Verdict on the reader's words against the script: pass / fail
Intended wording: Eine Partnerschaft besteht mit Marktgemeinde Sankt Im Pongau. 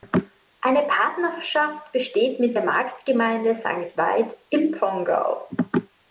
fail